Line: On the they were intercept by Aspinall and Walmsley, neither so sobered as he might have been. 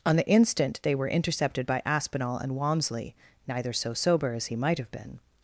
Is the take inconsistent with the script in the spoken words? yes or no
yes